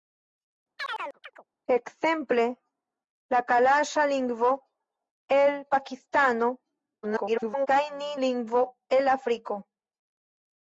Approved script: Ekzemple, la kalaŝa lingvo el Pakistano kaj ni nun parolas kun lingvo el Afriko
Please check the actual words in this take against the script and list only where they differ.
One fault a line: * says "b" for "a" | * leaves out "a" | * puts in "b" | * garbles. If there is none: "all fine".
* garbles
* leaves out "nun parolas kun"